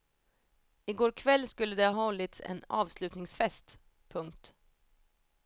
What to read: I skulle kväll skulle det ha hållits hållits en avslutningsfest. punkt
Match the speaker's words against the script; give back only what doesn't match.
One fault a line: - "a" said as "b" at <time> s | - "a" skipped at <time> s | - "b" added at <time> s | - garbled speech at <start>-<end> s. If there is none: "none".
- "skulle" said as "går" at 0.9 s
- "hållits" skipped at 2.4 s